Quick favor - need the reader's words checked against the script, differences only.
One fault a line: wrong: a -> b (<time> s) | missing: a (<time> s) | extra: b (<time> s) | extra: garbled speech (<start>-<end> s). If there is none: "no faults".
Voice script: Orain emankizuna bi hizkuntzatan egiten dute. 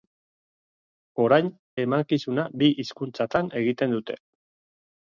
no faults